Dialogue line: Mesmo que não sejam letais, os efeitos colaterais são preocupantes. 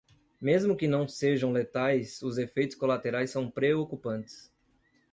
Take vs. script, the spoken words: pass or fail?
pass